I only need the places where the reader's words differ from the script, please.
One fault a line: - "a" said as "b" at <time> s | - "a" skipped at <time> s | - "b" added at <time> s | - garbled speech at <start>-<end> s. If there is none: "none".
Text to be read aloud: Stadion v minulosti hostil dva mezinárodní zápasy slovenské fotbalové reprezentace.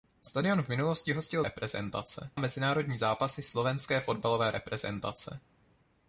- "dva" said as "reprezentace" at 1.4 s